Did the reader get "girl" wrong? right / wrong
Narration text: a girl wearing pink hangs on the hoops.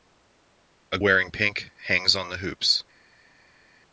wrong